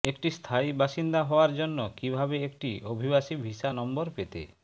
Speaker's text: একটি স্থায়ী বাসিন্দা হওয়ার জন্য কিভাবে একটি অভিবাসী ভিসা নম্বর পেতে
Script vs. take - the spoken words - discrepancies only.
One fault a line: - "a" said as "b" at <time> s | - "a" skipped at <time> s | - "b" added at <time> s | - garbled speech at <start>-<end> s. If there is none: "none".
none